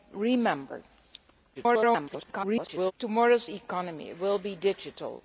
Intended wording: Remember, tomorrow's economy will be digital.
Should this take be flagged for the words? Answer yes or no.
yes